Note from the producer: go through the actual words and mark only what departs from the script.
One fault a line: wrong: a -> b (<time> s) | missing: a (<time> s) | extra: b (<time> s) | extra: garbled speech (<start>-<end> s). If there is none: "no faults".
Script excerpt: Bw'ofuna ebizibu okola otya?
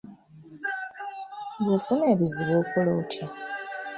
no faults